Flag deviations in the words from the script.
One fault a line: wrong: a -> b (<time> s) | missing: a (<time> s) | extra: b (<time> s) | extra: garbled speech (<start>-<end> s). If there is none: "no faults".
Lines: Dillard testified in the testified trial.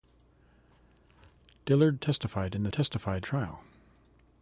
no faults